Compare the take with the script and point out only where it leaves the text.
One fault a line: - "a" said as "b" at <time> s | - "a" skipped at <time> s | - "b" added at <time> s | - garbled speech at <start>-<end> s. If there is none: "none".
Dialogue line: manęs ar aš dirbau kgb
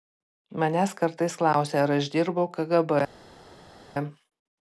- "kartais klausia" added at 1.0 s